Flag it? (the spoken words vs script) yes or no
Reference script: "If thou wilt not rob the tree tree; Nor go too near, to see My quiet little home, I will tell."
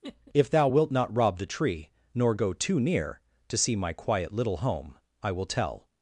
yes